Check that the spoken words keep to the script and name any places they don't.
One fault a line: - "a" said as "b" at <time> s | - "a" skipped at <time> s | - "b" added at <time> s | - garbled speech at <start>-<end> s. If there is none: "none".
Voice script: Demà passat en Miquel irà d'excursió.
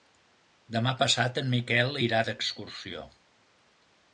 none